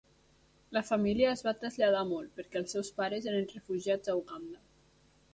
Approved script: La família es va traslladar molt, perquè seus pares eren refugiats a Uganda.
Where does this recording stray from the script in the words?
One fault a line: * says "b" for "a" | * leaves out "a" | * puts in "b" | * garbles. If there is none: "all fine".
* puts in "els"